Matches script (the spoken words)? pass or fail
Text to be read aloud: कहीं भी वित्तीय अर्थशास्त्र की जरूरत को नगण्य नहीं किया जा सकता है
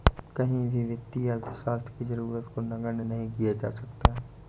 pass